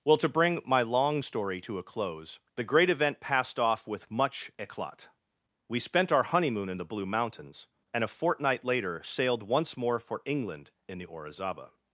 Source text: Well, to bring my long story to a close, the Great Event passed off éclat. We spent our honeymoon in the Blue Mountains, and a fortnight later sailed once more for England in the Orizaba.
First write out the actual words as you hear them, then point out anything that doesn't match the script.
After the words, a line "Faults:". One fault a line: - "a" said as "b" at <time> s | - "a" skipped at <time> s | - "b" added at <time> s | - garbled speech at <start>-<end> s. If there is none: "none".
Well, to bring my long story to a close, the Great Event passed off with much éclat. We spent our honeymoon in the Blue Mountains, and a fortnight later sailed once more for England in the Orizaba.
Faults:
- "with much" added at 3.9 s